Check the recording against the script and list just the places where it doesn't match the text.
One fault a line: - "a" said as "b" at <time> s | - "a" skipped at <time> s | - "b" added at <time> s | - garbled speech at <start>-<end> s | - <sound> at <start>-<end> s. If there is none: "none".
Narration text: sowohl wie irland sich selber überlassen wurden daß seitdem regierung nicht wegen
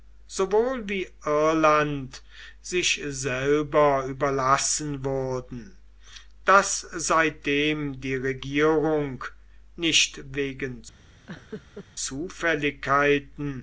- "die" added at 8.0 s
- laugh at 11.3-11.9 s